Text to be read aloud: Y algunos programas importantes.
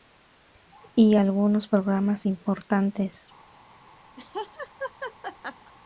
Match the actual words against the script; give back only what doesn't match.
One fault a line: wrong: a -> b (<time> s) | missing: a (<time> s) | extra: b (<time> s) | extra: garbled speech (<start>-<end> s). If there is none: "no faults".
no faults